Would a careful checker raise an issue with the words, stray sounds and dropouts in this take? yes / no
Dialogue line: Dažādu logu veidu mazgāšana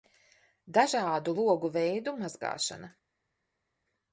no